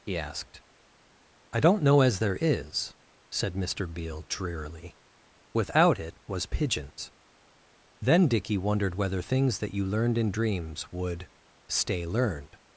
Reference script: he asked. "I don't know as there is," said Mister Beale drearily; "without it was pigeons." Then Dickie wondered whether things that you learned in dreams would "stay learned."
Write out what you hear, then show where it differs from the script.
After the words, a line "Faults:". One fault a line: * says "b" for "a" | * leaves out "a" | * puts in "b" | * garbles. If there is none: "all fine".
he asked. "I don't know as there is," said Mister Beale drearily; "without it was pigeons." Then Dickie wondered whether things that you learned in dreams would "stay learned."
Faults:
all fine